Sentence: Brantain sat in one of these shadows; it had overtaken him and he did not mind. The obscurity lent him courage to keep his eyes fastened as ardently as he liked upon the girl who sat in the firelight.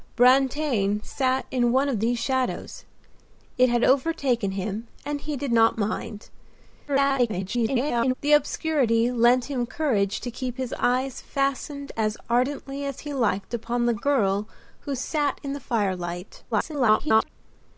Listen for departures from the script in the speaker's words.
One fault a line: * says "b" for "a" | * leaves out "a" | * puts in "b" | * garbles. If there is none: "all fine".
* garbles
* garbles